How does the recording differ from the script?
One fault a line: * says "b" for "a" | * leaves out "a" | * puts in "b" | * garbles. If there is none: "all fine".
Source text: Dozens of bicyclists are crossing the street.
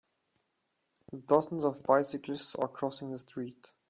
all fine